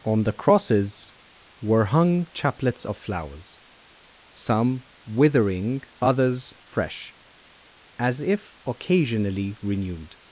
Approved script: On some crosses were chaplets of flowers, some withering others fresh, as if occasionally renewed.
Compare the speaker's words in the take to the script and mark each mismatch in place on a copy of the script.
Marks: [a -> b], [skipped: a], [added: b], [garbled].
On [some -> the] crosses were [added: hung] chaplets of flowers, some withering others fresh, as if occasionally renewed.